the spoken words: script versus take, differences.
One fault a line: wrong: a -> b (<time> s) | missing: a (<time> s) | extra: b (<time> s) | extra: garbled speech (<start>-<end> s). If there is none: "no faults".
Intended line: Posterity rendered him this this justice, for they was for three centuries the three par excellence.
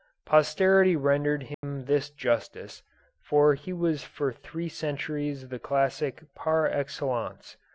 missing: this (2.1 s)
wrong: they -> he (3.5 s)
wrong: three -> classic (5.6 s)